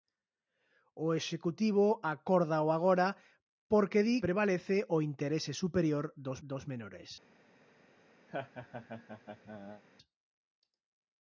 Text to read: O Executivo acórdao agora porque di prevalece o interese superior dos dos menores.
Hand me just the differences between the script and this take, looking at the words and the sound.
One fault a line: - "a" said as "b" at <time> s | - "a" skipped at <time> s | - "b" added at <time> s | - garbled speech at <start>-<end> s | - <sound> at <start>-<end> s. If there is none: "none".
- laugh at 8.3-9.8 s